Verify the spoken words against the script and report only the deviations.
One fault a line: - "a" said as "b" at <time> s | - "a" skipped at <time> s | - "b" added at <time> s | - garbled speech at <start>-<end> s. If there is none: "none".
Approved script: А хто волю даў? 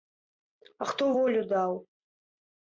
none